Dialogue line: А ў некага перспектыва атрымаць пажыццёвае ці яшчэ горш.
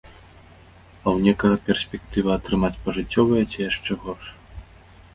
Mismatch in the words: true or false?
false